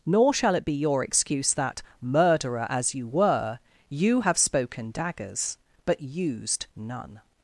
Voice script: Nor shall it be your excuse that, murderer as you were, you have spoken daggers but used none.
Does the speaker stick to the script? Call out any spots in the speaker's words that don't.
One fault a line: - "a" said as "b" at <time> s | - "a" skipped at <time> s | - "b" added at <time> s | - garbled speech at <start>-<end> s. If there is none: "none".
none